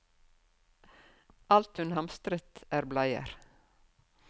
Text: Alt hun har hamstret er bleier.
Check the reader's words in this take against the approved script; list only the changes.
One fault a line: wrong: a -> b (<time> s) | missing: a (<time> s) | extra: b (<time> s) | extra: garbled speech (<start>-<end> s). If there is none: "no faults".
missing: har (1.9 s)